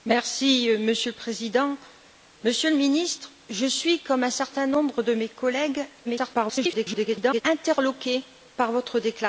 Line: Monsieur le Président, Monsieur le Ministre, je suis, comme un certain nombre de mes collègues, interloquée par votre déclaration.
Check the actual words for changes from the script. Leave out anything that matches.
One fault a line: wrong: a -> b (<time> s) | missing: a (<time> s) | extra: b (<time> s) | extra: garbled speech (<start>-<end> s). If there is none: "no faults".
extra: garbled speech (6.0-7.4 s)